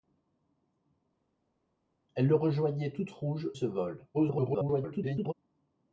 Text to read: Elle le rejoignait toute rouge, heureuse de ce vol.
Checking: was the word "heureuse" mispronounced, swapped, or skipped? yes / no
yes